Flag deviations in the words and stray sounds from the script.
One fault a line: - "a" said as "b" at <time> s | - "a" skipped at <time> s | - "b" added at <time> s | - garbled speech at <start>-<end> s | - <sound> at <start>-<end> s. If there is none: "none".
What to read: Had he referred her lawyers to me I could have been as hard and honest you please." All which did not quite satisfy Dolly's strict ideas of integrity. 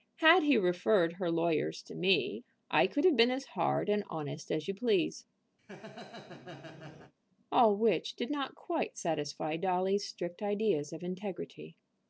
- "as" added at 4.5 s
- laugh at 5.6-7.1 s